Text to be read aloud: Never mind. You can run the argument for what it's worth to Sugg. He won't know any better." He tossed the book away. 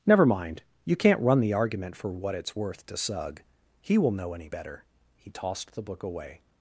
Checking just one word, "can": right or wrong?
wrong